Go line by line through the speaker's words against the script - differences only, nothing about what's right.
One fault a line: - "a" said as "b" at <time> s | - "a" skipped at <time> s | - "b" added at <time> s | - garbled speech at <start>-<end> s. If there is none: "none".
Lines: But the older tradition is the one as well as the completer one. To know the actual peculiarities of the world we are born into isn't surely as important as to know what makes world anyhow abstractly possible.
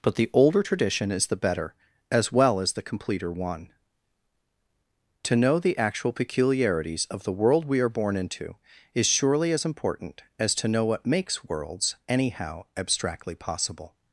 - "one" said as "better" at 1.4 s
- "isn't" said as "is" at 8.9 s
- "world" said as "worlds" at 11.4 s